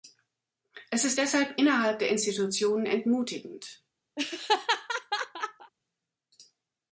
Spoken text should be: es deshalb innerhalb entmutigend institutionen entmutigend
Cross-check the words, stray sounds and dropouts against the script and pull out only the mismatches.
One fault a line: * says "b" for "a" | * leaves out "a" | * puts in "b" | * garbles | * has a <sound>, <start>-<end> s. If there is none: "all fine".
* puts in "ist"
* says "der" for "entmutigend"
* has a laugh, 4.2-5.7 s